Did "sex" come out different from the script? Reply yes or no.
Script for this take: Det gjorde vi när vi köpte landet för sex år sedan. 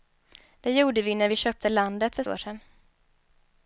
yes